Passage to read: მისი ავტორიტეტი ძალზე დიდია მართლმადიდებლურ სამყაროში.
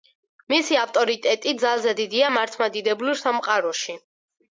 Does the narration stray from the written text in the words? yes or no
no